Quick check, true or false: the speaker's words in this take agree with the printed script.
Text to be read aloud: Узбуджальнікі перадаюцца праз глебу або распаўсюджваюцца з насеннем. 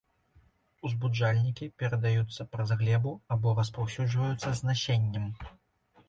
true